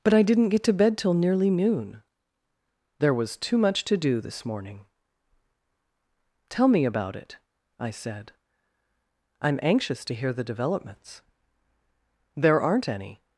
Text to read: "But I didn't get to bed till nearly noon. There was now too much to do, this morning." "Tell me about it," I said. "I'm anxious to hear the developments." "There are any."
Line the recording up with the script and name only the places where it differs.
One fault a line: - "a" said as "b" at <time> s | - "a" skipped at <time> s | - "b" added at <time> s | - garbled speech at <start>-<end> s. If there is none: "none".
- "now" skipped at 3.4 s
- "are" said as "aren't" at 12.6 s